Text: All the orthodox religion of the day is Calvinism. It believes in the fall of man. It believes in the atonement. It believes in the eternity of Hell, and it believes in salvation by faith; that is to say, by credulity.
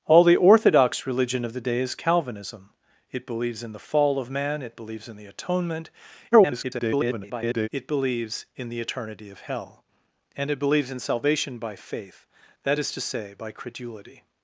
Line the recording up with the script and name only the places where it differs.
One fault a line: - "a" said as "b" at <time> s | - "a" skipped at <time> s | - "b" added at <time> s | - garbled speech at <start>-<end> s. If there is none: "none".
- garbled speech at 6.3-7.7 s